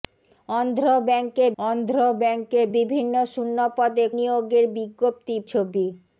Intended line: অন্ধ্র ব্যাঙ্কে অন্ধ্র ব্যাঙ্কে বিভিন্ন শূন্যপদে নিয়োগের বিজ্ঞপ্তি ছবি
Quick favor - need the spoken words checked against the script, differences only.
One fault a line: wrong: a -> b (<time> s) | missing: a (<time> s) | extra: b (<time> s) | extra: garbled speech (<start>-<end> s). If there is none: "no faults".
no faults